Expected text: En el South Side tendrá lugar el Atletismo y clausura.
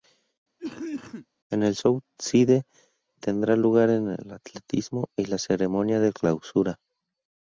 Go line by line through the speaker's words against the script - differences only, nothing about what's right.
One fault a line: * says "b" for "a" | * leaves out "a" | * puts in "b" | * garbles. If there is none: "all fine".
* puts in "la ceremonia de"